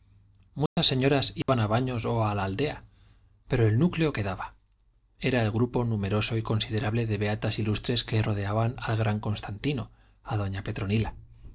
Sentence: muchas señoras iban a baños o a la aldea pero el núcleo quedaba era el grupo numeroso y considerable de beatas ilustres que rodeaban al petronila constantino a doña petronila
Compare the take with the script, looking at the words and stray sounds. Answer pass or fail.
fail